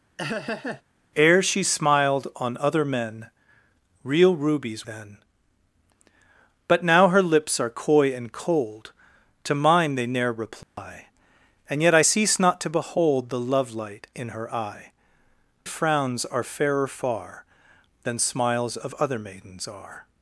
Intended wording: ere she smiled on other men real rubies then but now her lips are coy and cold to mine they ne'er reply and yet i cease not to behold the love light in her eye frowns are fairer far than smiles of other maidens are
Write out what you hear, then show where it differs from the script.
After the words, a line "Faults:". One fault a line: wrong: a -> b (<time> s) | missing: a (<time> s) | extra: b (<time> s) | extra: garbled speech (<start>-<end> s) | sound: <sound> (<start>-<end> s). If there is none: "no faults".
ere she smiled on other men real rubies then but now her lips are coy and cold to mine they ne'er reply and yet i cease not to behold the love light in her eye frowns are fairer far than smiles of other maidens are
Faults:
sound: laugh (0.2-0.8 s)
sound: dropout (10.6-10.8 s)